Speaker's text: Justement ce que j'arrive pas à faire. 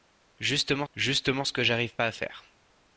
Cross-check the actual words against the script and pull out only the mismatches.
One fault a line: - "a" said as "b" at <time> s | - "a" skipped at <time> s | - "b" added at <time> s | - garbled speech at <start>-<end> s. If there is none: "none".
- "justement" added at 0.9 s